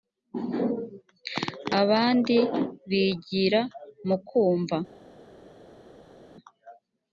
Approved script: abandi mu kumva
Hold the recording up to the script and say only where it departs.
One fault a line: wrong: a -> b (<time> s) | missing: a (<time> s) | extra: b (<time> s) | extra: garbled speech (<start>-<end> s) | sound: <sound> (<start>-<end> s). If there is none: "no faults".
extra: bigira (2.9 s)